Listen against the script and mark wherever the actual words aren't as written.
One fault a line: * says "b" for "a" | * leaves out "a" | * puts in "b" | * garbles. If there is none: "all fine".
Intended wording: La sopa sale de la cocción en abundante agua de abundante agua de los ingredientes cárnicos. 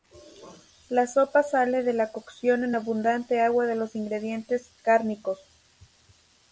* leaves out "abundante agua de"